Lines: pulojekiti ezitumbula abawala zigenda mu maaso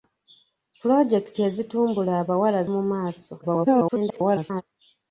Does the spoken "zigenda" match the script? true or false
false